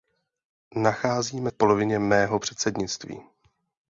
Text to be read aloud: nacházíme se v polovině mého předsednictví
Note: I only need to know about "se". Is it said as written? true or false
false